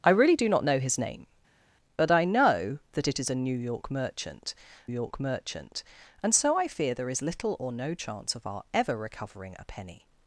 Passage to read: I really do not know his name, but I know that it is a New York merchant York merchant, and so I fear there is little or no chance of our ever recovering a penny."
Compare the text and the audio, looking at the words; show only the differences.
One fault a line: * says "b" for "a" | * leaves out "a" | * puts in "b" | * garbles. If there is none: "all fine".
all fine